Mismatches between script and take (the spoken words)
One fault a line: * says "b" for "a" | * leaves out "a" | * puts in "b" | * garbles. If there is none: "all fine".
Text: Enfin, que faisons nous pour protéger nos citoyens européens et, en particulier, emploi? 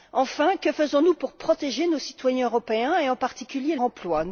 all fine